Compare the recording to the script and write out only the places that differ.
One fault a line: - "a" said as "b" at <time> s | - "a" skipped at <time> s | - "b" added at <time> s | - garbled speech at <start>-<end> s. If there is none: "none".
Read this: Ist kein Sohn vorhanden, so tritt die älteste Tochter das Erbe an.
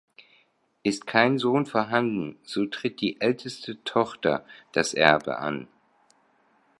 none